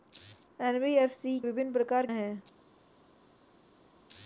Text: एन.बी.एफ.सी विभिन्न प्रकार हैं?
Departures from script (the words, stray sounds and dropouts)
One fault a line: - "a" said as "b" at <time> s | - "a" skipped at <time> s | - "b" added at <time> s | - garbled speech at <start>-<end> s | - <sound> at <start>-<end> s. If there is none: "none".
none